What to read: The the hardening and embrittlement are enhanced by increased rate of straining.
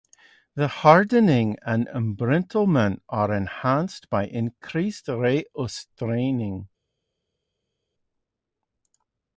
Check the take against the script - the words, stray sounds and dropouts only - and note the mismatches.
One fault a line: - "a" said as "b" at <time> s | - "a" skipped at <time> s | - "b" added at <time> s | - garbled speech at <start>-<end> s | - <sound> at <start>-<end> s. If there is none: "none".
- "the" skipped at 0.7 s